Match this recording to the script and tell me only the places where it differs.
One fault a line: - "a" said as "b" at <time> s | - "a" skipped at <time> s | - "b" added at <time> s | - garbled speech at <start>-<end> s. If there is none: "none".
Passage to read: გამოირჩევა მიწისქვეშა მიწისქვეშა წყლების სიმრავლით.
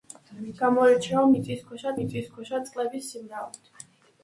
none